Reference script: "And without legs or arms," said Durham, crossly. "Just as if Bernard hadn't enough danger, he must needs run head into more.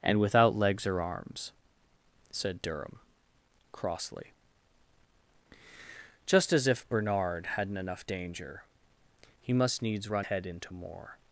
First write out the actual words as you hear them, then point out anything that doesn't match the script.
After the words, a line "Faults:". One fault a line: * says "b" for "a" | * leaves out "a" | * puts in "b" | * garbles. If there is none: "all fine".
"And without legs or arms," said Durham, crossly. "Just as if Bernard hadn't enough danger, he must needs run head into more.
Faults:
all fine